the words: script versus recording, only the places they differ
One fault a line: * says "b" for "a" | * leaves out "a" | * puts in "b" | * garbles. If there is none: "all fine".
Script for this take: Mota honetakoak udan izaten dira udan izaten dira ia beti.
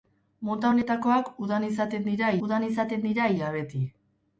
all fine